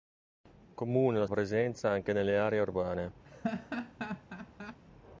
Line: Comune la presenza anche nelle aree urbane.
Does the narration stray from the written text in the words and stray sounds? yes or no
yes